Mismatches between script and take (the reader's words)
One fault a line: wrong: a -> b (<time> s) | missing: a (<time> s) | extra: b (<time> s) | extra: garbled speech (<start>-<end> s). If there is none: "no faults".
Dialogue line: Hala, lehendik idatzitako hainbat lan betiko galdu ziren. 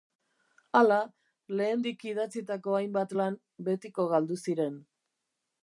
no faults